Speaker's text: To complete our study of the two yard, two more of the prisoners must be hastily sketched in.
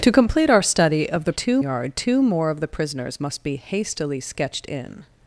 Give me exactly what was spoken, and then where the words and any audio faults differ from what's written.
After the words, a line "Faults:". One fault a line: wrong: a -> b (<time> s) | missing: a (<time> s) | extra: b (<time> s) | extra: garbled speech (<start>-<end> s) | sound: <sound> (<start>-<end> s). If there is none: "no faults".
To complete our study of the two yard, two more of the prisoners must be hastily sketched in.
Faults:
no faults